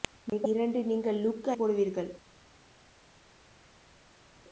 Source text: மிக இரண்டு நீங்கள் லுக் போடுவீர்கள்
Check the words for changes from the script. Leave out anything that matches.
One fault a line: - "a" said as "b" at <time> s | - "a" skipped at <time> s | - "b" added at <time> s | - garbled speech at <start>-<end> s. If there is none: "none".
none